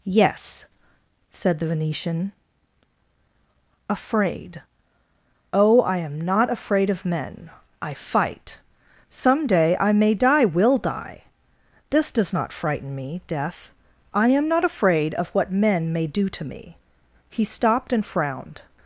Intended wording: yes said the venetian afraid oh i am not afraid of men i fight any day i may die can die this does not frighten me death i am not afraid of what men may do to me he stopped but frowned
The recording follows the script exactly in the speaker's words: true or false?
false